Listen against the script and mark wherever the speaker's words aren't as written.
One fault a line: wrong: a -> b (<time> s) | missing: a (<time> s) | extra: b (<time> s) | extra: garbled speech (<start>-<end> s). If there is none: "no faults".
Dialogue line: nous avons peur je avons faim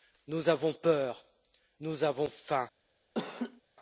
wrong: je -> nous (1.8 s)